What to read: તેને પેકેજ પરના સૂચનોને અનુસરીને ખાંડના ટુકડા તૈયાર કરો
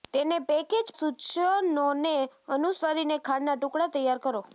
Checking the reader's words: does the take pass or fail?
fail